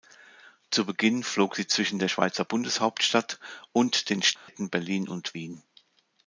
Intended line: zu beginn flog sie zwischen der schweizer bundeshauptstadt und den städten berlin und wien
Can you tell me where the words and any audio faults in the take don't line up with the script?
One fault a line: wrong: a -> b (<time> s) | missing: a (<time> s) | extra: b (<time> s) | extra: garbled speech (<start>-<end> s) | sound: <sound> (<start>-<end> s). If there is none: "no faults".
sound: dropout (4.4-4.5 s)